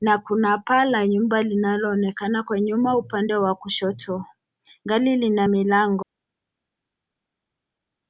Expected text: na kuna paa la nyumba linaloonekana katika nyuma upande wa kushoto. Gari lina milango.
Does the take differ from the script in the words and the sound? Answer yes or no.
yes